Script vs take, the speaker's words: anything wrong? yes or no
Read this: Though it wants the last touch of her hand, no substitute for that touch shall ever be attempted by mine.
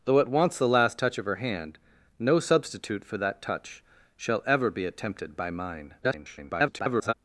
yes